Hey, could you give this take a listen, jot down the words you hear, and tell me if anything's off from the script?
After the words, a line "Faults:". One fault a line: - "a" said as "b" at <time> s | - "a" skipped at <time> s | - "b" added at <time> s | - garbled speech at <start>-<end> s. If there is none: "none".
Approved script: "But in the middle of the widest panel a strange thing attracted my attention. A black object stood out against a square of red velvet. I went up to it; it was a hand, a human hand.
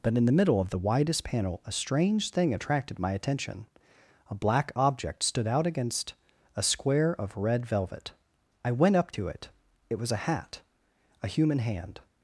"But in the middle of the widest panel a strange thing attracted my attention. A black object stood out against a square of red velvet. I went up to it; it was a hat, a human hand.
Faults:
- "hand" said as "hat" at 10.2 s